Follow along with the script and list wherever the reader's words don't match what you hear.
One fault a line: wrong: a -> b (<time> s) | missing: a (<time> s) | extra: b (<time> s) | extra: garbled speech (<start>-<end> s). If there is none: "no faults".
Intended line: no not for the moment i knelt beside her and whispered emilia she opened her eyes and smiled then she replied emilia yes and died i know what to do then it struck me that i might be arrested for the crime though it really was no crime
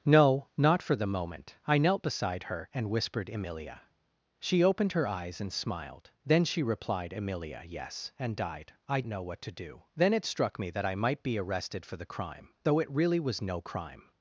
no faults